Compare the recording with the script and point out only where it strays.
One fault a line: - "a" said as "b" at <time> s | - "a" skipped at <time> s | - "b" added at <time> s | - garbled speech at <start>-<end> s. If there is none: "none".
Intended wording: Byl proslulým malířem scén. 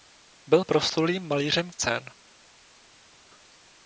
none